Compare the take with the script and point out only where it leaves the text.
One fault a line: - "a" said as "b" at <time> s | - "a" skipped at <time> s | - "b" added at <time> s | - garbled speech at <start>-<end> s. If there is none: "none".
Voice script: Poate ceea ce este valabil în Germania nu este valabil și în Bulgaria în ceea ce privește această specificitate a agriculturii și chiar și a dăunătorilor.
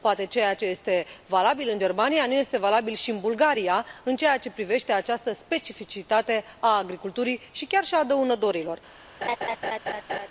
none